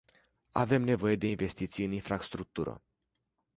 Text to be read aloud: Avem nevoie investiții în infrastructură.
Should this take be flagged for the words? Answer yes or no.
yes